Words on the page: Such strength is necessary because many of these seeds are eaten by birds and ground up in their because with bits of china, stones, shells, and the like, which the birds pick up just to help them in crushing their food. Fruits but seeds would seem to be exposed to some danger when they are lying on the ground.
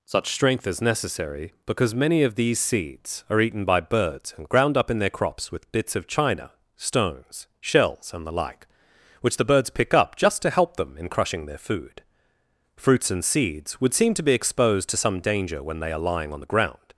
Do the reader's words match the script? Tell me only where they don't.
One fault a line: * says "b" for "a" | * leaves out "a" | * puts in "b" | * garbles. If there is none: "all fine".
* says "crops" for "because"
* says "and" for "but"